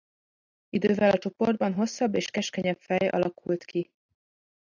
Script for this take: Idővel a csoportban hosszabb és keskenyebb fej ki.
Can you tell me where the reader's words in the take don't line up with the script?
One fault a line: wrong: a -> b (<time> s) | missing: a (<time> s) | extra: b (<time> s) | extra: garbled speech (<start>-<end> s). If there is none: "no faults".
extra: alakult (3.1 s)